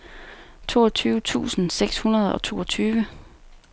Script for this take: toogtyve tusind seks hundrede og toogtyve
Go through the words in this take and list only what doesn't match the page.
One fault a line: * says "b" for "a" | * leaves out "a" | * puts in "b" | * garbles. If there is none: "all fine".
all fine